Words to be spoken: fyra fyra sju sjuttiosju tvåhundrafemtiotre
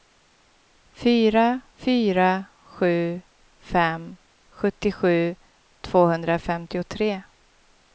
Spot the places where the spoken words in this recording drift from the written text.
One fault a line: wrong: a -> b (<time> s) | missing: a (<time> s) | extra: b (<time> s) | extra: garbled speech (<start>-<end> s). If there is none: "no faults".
extra: fem (3.6 s)